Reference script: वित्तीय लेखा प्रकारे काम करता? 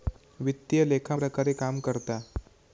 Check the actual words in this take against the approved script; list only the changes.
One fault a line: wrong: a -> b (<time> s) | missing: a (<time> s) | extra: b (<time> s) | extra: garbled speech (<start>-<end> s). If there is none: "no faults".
no faults